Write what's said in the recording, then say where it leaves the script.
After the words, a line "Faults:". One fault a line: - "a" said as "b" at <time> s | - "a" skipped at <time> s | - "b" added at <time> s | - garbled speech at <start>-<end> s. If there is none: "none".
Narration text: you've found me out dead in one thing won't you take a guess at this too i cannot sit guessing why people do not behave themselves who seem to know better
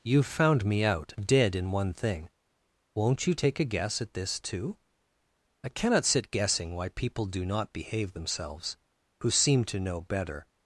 you've found me out dead in one thing won't you take a guess at this too i cannot sit guessing why people do not behave themselves who seem to know better
Faults:
none